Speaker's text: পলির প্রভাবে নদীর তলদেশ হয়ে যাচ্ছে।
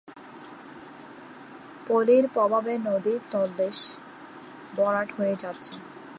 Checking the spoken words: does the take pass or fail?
fail